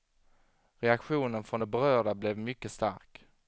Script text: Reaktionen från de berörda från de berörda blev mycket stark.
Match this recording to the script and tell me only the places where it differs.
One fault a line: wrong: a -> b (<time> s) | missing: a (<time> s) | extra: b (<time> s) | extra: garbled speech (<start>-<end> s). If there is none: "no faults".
missing: från de berörda (2.1 s)